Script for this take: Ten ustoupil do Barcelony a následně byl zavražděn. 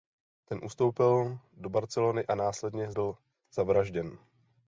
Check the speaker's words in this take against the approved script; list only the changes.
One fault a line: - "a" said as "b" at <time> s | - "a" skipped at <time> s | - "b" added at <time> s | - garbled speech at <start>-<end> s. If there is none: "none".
none